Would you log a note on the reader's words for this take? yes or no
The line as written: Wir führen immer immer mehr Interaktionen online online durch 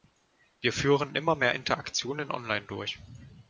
yes